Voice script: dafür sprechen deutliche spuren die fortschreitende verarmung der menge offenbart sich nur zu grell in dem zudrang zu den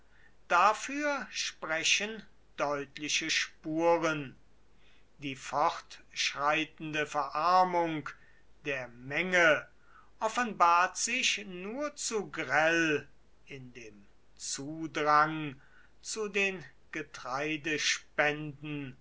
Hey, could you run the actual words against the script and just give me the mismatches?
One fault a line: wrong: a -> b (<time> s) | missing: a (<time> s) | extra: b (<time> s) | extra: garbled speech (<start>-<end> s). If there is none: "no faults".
no faults